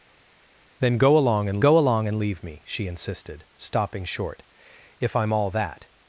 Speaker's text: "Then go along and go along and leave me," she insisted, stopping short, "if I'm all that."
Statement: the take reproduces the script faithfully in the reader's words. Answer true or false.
true